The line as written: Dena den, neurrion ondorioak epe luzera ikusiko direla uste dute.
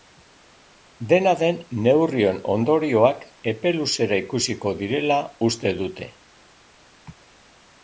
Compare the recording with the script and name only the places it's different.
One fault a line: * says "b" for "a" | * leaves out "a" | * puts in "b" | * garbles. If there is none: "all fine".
all fine